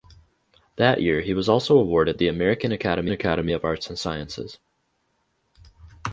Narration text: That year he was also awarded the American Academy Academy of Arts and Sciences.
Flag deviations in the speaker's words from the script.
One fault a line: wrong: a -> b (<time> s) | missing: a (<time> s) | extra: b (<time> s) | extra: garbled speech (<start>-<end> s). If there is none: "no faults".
no faults